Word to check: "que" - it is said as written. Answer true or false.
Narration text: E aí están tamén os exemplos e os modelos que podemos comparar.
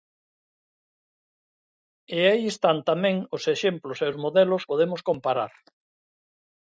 false